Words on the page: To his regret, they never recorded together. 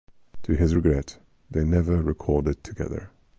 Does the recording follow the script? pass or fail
pass